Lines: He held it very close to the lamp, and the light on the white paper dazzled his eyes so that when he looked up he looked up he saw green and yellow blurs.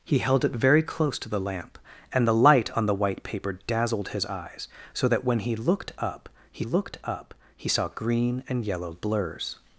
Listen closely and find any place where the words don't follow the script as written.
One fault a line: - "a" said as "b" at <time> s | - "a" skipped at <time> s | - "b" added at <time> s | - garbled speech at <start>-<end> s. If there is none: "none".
none